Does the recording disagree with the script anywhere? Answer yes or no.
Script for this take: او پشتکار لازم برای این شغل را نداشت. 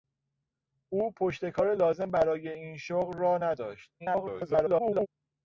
yes